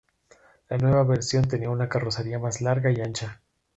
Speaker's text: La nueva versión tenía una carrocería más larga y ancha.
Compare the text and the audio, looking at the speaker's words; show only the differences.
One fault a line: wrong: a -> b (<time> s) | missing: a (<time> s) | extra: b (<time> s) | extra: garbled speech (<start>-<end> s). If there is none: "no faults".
no faults